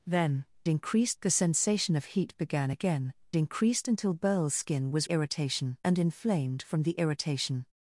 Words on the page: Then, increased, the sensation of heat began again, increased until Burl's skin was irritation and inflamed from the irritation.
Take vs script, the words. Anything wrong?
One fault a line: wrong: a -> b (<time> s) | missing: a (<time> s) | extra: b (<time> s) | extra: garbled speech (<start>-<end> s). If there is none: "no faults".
no faults